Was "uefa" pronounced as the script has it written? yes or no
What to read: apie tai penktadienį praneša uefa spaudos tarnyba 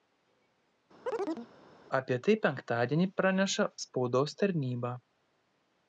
no